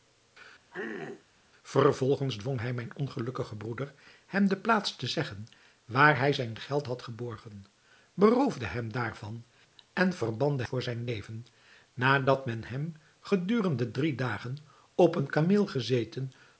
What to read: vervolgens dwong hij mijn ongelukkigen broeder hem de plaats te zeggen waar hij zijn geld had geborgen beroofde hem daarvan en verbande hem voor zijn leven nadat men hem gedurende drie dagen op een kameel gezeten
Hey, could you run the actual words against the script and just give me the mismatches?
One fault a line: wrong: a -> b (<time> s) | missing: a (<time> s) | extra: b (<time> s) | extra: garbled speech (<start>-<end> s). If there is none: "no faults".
missing: hem (10.6 s)